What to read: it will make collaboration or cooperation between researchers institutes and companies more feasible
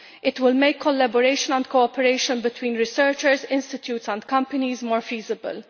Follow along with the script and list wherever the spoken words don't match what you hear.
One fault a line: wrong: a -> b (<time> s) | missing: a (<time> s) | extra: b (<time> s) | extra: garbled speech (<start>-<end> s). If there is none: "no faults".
wrong: or -> and (1.5 s)